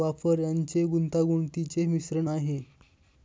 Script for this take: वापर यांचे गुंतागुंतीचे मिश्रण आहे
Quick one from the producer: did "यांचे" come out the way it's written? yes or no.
yes